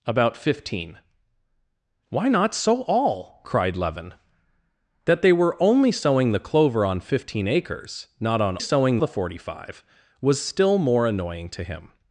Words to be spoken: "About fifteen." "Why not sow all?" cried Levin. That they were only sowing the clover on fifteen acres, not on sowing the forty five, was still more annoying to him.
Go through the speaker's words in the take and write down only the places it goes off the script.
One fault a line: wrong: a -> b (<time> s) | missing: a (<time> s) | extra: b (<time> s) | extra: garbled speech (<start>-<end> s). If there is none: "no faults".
no faults